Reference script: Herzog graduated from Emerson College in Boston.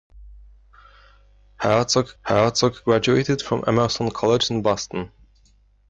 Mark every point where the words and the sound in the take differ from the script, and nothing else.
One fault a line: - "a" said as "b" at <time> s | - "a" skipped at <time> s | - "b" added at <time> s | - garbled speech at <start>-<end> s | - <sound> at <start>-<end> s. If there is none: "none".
- "herzog" added at 2.2 s